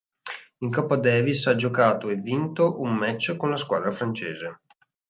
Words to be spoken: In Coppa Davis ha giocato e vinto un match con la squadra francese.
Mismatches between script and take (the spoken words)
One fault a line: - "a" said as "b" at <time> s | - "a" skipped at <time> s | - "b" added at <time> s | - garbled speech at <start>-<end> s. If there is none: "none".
none